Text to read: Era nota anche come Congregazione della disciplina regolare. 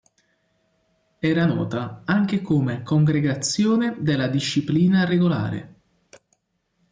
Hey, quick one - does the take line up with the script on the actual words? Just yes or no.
yes